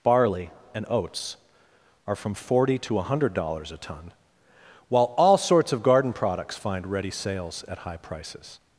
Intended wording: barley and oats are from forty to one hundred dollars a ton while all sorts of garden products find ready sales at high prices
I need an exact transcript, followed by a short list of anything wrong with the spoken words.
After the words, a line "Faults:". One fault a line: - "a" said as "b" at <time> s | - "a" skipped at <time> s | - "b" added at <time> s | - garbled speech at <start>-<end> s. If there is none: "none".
barley and oats are from forty to one hundred dollars a ton while all sorts of garden products find ready sales at high prices
Faults:
none